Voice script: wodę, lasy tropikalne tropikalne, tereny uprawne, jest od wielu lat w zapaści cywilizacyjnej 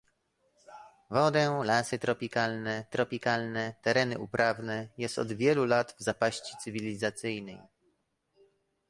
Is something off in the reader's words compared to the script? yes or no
no